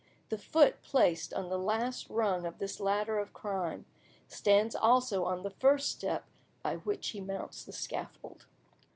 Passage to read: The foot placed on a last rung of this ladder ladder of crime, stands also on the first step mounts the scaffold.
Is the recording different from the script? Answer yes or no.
yes